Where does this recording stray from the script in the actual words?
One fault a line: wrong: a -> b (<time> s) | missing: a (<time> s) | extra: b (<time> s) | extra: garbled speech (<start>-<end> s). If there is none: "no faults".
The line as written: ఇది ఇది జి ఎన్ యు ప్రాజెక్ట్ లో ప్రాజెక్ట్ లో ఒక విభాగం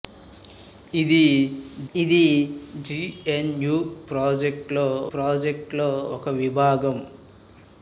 no faults